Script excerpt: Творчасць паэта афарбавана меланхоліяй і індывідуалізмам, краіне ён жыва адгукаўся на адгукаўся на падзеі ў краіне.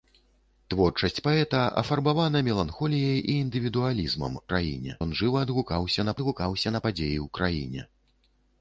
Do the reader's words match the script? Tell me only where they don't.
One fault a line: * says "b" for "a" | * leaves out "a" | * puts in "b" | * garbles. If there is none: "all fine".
all fine